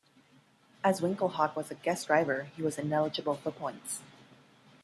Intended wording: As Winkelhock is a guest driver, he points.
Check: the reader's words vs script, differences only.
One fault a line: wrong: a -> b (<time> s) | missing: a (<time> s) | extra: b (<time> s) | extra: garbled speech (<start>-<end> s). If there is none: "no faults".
wrong: is -> was (1.6 s)
extra: was ineligible for (2.6 s)